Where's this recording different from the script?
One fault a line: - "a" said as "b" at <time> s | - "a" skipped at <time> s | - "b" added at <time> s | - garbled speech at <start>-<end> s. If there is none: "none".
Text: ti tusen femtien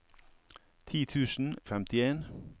none